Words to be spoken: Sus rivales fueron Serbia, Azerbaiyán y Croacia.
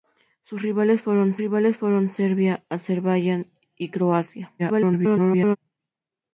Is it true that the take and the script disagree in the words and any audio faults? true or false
true